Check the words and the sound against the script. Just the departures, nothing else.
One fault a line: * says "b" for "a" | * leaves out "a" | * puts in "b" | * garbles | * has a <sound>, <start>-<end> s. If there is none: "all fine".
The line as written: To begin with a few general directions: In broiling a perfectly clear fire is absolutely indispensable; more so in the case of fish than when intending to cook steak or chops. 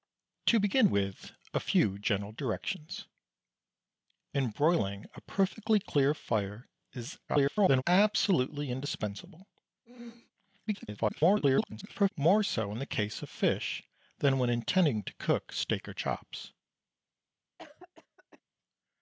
* garbles
* has a throat clearing, 9.9-10.3 s
* garbles
* has a cough, 17.6-18.4 s